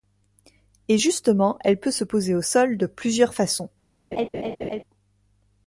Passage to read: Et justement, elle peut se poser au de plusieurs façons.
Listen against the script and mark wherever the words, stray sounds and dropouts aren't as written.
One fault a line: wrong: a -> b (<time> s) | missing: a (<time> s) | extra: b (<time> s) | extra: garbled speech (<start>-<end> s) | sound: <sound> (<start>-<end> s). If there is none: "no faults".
extra: sol (2.4 s)
sound: laugh (4.1-4.8 s)